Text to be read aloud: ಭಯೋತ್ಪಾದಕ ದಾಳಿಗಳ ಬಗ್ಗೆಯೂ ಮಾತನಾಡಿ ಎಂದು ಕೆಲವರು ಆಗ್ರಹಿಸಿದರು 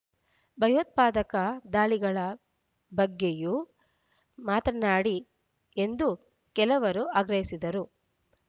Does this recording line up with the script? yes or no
yes